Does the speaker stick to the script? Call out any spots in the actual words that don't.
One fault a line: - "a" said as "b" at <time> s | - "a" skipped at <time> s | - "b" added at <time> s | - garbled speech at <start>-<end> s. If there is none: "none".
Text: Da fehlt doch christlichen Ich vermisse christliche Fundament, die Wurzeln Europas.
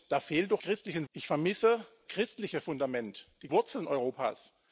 none